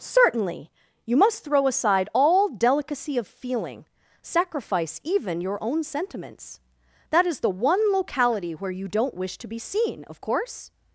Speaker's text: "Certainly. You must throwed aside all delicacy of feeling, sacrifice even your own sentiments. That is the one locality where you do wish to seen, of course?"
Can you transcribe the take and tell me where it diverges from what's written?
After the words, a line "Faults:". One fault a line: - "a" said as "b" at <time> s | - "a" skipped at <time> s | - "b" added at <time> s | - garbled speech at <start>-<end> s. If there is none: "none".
"Certainly. You must throw aside all delicacy of feeling, sacrifice even your own sentiments. That is the one locality where you don't wish to be seen, of course?"
Faults:
- "throwed" said as "throw" at 1.4 s
- "do" said as "don't" at 8.9 s
- "be" added at 9.5 s